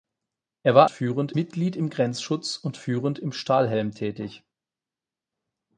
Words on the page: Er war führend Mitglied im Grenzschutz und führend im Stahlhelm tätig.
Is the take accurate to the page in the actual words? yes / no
yes